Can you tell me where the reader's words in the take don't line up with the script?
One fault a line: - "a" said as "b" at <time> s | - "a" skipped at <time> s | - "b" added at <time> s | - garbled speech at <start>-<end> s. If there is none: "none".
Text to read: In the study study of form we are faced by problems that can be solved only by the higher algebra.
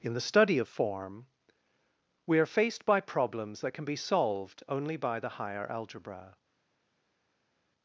- "study" skipped at 0.6 s